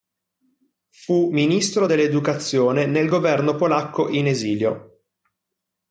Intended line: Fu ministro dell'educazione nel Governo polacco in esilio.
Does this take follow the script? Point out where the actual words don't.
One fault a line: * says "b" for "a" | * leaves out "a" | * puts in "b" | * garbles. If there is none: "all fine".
all fine